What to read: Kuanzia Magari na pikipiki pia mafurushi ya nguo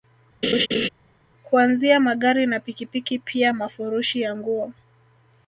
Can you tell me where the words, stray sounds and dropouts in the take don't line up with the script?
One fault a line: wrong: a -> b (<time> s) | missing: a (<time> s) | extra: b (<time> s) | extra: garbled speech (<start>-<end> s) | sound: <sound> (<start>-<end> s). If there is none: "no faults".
sound: laugh (0.4-0.9 s)